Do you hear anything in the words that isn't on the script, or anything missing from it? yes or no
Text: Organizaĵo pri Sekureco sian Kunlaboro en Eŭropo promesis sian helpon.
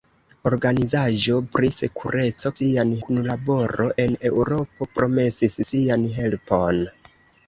no